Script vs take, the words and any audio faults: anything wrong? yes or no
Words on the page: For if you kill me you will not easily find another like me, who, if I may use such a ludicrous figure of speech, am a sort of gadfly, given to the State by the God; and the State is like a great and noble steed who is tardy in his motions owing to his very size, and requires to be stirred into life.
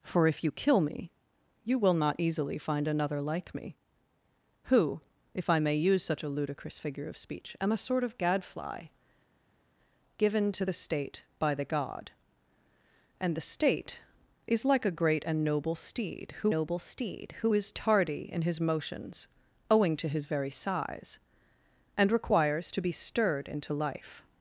yes